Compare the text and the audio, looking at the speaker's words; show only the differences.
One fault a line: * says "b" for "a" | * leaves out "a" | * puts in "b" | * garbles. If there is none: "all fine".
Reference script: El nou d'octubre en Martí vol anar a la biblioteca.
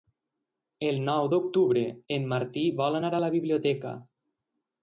all fine